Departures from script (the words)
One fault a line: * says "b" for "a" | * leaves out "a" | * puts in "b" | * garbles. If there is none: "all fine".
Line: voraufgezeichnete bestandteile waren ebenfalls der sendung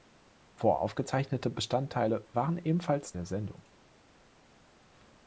all fine